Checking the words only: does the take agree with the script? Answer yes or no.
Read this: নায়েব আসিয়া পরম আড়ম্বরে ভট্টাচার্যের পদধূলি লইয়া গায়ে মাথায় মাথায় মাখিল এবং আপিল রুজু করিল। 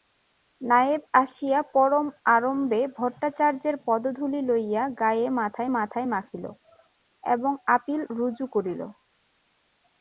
yes